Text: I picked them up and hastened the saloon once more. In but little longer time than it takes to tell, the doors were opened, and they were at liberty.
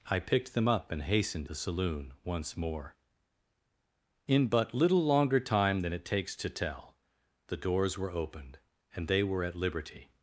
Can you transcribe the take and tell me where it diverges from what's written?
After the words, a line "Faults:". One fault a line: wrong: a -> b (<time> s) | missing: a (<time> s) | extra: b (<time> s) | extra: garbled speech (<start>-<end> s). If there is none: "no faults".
I picked them up and hastened the saloon once more. In but little longer time than it takes to tell, the doors were opened, and they were at liberty.
Faults:
no faults